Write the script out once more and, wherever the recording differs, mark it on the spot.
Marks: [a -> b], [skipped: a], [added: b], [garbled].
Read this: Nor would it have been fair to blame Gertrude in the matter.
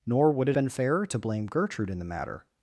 Nor would it [skipped: have] been fair to blame Gertrude in the matter.